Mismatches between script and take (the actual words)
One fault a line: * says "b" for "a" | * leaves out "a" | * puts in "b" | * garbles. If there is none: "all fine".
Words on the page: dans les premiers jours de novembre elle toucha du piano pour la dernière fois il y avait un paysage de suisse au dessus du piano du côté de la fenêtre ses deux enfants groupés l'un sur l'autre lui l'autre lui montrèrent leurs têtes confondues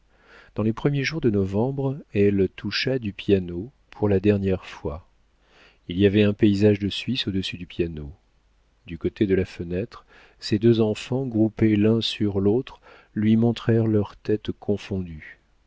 * leaves out "l'autre lui"